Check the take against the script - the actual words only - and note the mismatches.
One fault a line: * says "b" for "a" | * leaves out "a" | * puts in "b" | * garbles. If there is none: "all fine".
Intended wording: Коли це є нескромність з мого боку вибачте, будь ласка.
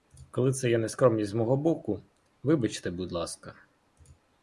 all fine